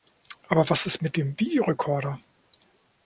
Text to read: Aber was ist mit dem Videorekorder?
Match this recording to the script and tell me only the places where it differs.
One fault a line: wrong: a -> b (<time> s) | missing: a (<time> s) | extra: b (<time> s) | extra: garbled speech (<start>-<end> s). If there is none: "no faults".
no faults